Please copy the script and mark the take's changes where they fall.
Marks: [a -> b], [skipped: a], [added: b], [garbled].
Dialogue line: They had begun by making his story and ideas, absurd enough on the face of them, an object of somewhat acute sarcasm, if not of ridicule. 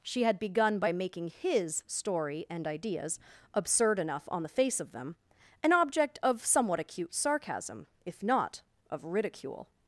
[They -> She] had begun by making his story and ideas, absurd enough on the face of them, an object of somewhat acute sarcasm, if not of ridicule.